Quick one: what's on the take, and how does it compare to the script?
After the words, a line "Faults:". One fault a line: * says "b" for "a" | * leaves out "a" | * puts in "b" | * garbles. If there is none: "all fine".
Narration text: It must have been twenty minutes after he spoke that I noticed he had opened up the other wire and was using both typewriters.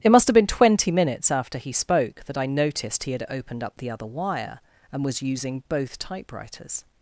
It must have been twenty minutes after he spoke that I noticed he had opened up the other wire and was using both typewriters.
Faults:
all fine